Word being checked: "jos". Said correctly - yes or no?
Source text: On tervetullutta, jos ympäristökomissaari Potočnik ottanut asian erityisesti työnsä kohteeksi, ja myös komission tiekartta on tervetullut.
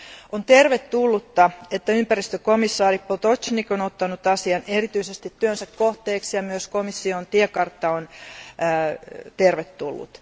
no